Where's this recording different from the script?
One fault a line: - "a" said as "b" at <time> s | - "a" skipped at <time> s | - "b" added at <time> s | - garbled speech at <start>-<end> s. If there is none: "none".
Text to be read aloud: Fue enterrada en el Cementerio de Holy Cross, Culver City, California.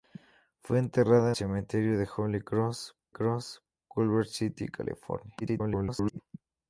- "en el" skipped at 1.3 s
- "Cross" added at 3.1 s
- garbled speech at 5.4-6.2 s